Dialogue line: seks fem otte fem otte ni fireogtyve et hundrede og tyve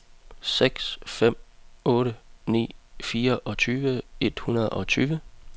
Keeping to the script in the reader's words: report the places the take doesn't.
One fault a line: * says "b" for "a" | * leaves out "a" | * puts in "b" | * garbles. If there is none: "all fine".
* leaves out "fem otte"